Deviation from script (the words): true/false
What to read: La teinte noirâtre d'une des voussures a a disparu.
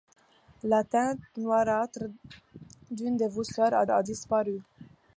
false